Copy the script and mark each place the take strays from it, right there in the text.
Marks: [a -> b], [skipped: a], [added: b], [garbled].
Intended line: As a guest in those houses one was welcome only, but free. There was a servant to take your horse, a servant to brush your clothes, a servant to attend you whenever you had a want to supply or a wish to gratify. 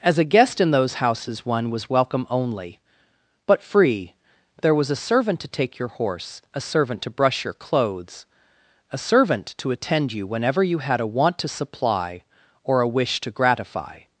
As a guest in those houses one was welcome only, but free. There was a servant to take your horse, a servant to brush your clothes, a servant to attend you whenever you had a want to supply or a wish to gratify.